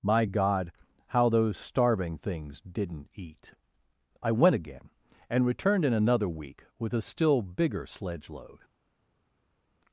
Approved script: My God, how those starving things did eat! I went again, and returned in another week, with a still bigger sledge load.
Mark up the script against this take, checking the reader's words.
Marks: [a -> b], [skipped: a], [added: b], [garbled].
My God, how those starving things [did -> didn't] eat! I went again, and returned in another week, with a still bigger sledge load.